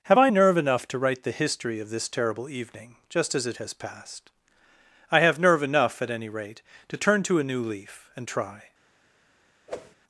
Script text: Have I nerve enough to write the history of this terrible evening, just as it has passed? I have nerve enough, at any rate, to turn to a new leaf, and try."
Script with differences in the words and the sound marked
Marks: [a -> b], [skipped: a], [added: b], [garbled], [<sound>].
Have I nerve enough to write the history of this terrible evening, just as it has passed? I have nerve enough, at any rate, to turn to a new leaf, and try." [whoosh]